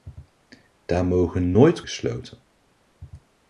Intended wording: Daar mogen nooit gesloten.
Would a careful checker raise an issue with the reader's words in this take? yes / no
no